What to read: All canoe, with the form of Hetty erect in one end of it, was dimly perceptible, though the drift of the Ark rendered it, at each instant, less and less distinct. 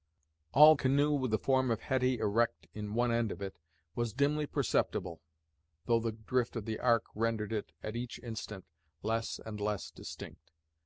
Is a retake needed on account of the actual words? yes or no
no